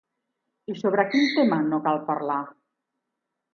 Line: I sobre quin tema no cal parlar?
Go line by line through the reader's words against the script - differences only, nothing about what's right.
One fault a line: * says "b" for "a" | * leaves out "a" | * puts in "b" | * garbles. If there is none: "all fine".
all fine